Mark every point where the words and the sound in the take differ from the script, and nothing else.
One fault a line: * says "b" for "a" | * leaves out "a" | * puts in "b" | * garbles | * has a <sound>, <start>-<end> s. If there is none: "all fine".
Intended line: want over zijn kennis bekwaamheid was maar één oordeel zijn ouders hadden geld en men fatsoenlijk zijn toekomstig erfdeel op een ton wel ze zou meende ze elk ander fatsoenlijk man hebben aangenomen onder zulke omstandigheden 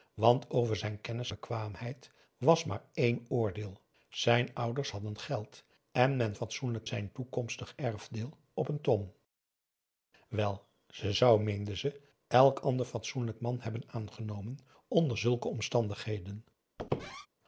* has a squeak, 16.8-17.3 s